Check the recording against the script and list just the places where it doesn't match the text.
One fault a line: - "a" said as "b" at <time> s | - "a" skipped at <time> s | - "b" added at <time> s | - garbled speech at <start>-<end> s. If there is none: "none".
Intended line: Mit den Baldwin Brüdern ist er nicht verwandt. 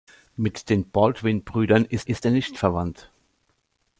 - "ist" added at 2.1 s